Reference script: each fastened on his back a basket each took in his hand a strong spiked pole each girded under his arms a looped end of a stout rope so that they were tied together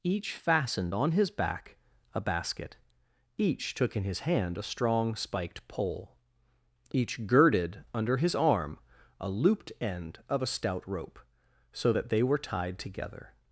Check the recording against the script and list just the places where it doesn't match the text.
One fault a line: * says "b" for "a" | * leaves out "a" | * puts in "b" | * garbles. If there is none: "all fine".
* says "arm" for "arms"